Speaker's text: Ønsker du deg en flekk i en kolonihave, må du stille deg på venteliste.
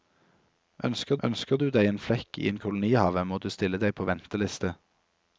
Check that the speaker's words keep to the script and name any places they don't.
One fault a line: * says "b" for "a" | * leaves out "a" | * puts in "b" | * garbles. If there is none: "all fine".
* puts in "ønsker"